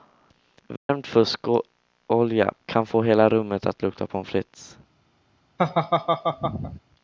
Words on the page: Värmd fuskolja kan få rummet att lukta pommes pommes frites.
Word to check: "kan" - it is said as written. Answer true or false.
true